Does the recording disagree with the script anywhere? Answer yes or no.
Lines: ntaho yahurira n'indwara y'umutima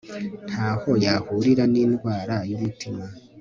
no